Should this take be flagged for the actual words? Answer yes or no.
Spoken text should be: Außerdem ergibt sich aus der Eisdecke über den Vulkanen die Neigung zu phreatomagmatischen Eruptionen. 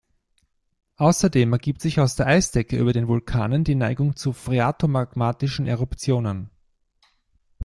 no